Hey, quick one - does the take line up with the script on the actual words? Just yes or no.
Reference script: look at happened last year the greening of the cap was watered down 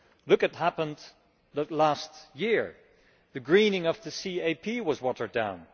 yes